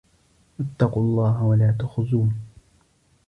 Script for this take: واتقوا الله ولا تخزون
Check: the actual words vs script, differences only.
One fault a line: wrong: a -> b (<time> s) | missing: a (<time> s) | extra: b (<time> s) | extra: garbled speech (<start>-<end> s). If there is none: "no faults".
no faults